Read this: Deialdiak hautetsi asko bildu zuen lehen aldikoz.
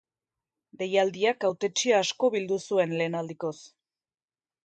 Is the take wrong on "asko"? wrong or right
right